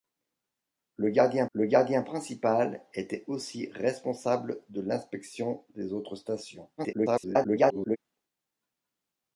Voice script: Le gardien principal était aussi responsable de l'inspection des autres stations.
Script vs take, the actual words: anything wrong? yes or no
yes